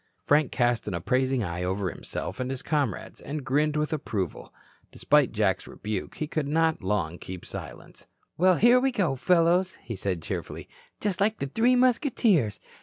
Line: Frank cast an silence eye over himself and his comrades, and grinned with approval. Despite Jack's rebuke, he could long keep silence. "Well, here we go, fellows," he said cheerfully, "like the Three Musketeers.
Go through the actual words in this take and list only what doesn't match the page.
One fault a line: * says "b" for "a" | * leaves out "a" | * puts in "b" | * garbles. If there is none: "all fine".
* says "appraising" for "silence"
* puts in "not"
* puts in "just"